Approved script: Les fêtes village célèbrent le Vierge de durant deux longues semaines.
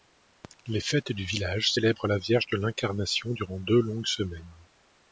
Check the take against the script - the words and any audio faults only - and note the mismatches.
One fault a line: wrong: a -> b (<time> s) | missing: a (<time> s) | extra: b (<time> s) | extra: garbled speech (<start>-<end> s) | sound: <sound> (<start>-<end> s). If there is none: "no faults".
extra: du (1.1 s)
wrong: le -> la (2.1 s)
extra: l'Incarnation (2.6 s)